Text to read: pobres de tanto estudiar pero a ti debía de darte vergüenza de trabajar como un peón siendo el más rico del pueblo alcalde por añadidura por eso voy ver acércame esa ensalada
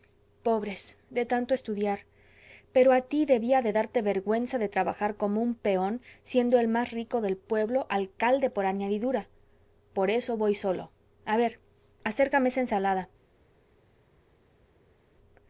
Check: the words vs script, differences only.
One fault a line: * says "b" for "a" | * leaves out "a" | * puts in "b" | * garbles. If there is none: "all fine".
* puts in "solo a"